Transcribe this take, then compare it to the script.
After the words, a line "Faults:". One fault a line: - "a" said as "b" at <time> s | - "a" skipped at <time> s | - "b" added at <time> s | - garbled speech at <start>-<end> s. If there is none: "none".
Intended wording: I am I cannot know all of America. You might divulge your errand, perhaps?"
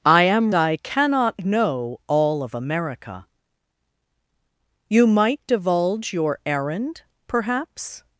I am I cannot know all of America. You might divulge your errand, perhaps?"
Faults:
none